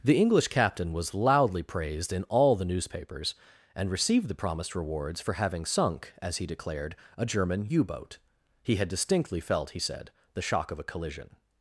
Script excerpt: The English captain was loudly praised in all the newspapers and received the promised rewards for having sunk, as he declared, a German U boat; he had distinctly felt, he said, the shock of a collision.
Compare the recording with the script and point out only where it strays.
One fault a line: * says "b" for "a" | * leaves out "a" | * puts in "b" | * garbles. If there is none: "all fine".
all fine